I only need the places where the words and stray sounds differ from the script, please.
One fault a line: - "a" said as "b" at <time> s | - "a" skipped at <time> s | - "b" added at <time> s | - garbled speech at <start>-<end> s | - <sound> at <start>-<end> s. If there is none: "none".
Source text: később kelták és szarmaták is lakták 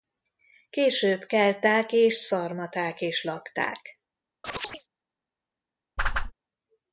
- chirp at 4.4-4.9 s
- whoosh at 6.0-6.3 s